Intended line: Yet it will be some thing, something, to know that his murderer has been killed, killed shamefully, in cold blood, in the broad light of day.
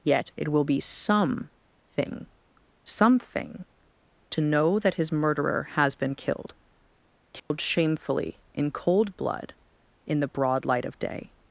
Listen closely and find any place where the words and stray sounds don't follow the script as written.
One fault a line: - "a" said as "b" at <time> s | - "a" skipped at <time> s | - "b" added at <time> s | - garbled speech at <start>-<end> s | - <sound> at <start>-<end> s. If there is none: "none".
- dropout at 7.4-7.5 s